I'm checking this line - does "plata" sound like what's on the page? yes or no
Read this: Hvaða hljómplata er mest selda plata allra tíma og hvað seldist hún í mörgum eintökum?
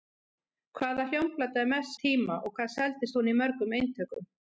no